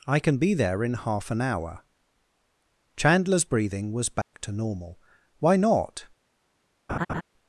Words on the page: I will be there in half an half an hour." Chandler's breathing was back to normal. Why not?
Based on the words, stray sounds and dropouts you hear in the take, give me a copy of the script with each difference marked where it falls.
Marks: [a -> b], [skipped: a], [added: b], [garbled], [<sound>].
I [will -> can] be there in half an [skipped: half an] hour." Chandler's breathing was back [dropout] to normal. Why not? [laugh]